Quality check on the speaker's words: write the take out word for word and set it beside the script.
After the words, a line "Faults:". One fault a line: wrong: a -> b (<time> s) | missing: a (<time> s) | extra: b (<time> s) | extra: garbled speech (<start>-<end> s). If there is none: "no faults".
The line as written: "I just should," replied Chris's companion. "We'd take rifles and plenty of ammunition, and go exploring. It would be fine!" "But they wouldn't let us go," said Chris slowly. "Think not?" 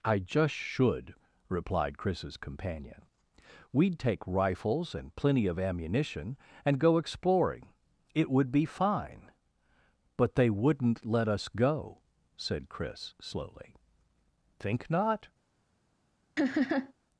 "I just should," replied Chris's companion. "We'd take rifles and plenty of ammunition, and go exploring. It would be fine!" "But they wouldn't let us go," said Chris slowly. "Think not?"
Faults:
no faults